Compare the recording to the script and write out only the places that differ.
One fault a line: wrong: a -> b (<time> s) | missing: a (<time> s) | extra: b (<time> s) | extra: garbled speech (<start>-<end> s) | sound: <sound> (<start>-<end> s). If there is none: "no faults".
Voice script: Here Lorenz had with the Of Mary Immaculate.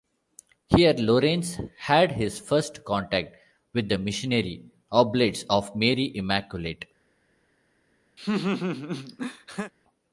extra: his first contact (2.1 s)
extra: Missionary Oblates (4.0 s)
sound: laugh (8.2-9.7 s)